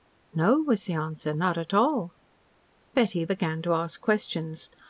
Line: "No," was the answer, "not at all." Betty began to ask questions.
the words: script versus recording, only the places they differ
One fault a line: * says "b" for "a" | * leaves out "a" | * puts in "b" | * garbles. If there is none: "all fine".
all fine